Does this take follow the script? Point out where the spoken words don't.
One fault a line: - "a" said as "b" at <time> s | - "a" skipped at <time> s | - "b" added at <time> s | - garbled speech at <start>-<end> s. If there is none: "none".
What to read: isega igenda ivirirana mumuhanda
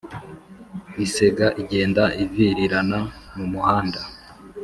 none